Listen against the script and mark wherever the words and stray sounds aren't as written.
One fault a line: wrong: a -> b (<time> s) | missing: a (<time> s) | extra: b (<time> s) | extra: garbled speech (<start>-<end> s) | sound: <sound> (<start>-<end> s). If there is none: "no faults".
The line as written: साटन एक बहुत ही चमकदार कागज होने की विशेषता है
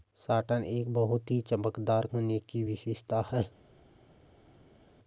missing: कागज (2.1 s)